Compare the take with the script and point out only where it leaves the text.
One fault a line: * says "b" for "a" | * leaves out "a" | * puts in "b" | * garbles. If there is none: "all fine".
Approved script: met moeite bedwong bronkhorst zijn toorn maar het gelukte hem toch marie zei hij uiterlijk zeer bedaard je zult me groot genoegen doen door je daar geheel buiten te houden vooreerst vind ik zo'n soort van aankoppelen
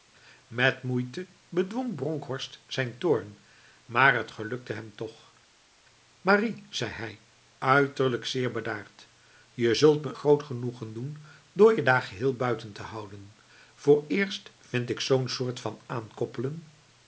all fine